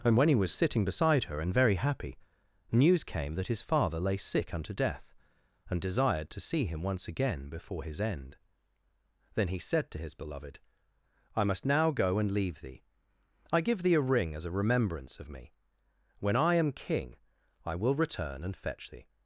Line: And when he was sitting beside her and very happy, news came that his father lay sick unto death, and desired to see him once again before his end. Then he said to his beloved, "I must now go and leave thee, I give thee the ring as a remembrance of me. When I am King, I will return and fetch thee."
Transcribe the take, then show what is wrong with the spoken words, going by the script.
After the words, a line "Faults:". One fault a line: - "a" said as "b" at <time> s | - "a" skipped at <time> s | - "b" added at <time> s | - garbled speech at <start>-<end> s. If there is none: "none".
And when he was sitting beside her and very happy, news came that his father lay sick unto death, and desired to see him once again before his end. Then he said to his beloved, "I must now go and leave thee, I give thee a ring as a remembrance of me. When I am King, I will return and fetch thee."
Faults:
- "the" said as "a" at 13.9 s